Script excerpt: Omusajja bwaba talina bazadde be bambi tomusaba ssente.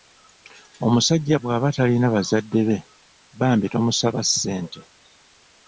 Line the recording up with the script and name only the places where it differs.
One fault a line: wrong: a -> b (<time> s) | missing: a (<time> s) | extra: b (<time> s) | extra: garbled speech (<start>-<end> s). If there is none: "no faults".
no faults